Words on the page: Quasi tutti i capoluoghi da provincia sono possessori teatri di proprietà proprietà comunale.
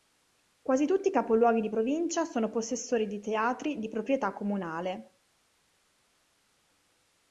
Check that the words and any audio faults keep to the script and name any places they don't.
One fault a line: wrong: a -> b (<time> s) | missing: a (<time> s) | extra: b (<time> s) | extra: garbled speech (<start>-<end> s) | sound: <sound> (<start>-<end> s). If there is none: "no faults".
wrong: da -> di (1.6 s)
extra: di (3.1 s)
missing: proprietà (4.3 s)